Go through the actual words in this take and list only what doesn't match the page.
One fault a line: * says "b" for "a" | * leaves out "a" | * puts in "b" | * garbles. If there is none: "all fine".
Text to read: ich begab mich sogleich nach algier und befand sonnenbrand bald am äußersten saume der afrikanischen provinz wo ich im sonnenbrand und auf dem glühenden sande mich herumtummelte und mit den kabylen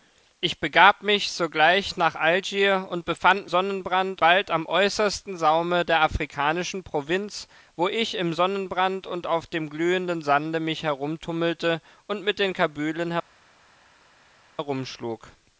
all fine